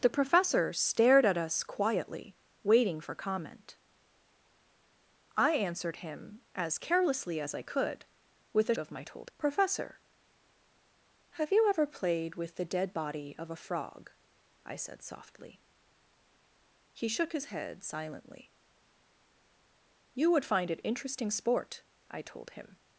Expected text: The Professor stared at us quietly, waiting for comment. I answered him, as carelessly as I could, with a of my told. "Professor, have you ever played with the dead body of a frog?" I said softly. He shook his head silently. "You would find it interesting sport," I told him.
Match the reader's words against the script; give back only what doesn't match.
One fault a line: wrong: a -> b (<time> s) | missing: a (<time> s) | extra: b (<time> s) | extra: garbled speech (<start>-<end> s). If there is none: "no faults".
no faults